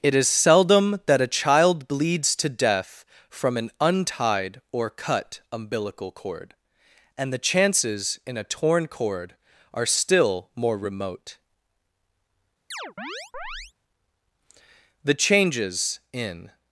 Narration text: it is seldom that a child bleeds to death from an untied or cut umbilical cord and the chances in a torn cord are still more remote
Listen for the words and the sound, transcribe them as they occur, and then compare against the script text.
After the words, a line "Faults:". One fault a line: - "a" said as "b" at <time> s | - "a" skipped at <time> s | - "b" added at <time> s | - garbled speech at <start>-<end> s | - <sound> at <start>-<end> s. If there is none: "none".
it is seldom that a child bleeds to death from an untied or cut umbilical cord and the chances in a torn cord are still more remote the changes in
Faults:
- chirp at 12.7-13.7 s
- "the changes in" added at 15.0 s